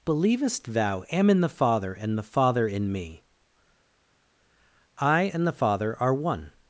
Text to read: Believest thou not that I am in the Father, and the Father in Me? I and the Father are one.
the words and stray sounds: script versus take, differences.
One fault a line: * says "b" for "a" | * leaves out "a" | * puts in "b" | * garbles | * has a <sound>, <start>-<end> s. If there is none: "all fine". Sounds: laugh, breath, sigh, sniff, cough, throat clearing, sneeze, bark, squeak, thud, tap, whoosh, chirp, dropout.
* leaves out "not that I"